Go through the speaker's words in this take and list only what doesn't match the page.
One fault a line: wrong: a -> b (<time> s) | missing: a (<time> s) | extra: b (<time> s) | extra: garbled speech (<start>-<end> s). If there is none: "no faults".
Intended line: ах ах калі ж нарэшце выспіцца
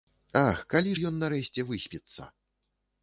missing: ах (0.6 s)
extra: ён (1.1 s)